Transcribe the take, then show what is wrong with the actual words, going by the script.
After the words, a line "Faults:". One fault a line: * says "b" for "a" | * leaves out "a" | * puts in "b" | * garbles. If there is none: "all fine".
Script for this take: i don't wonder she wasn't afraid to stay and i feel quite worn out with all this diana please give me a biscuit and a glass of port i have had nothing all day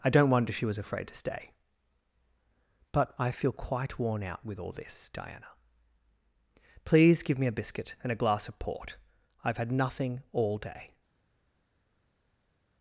i don't wonder she was afraid to stay but i feel quite worn out with all this diana please give me a biscuit and a glass of port i have had nothing all day
Faults:
* says "was" for "wasn't"
* says "but" for "and"